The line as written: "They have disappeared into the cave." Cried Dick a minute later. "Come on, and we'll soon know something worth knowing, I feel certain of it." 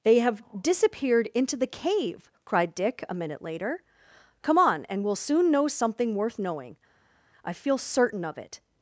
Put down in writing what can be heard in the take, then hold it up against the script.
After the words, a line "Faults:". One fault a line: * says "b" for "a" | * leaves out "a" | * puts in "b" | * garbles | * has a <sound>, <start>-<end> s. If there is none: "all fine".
"They have disappeared into the cave." Cried Dick a minute later. "Come on, and we'll soon know something worth knowing, I feel certain of it."
Faults:
all fine